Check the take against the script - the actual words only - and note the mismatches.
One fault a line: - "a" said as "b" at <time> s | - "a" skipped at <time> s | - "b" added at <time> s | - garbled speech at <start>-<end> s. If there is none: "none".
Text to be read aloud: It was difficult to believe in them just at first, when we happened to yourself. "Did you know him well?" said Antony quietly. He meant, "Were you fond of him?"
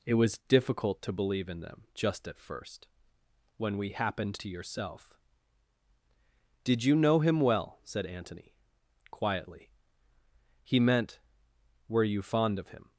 none